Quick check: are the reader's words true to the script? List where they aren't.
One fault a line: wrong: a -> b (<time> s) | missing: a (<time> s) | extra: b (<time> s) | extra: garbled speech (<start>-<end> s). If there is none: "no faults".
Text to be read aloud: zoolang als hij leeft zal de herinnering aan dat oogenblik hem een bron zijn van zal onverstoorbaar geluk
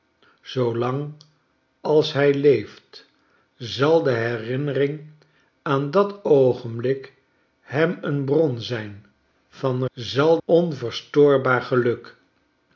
no faults